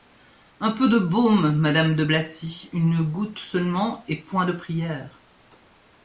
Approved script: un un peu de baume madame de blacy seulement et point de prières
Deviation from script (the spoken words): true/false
true